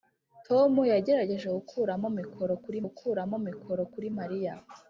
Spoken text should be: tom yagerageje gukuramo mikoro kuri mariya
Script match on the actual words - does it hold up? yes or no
no